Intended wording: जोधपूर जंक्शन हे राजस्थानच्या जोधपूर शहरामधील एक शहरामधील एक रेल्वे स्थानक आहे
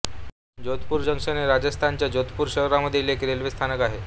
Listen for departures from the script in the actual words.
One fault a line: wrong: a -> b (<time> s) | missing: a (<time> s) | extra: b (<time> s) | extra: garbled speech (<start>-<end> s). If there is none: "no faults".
missing: शहरामधील एक (3.2 s)